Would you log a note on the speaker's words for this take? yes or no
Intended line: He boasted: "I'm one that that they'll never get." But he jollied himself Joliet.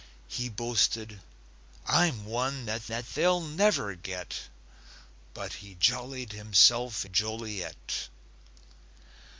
no